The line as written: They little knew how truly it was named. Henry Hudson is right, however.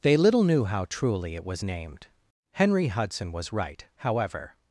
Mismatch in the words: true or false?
true